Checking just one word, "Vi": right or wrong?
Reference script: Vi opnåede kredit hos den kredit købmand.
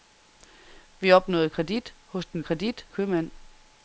right